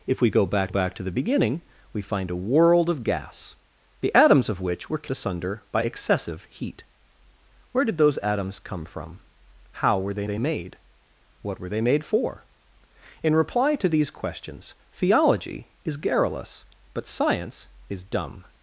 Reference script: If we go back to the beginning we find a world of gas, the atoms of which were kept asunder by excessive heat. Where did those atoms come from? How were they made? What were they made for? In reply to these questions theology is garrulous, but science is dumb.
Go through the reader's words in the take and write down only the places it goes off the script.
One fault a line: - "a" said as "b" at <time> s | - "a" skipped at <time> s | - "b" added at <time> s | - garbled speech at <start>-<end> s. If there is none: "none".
- "back" added at 0.7 s
- "kept" skipped at 5.1 s
- "they" added at 10.2 s